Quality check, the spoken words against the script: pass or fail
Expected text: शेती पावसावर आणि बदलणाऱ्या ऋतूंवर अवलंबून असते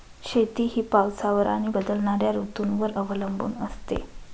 fail